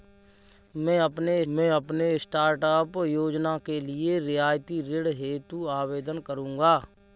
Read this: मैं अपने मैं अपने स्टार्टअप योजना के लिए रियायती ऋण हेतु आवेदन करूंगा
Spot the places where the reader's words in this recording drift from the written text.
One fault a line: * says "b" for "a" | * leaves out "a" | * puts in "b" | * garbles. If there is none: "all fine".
all fine